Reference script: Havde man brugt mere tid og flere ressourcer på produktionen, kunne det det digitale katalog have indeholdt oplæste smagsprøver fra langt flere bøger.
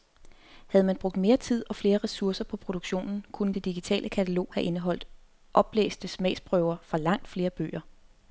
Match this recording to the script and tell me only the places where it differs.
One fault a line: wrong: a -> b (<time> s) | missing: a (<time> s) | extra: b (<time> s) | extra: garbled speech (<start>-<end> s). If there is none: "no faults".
missing: det (3.7 s)